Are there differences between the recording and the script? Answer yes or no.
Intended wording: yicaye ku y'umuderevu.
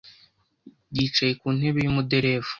yes